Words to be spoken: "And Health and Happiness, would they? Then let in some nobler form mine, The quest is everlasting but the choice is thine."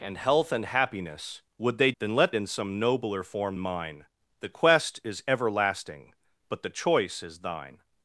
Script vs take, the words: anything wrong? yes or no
no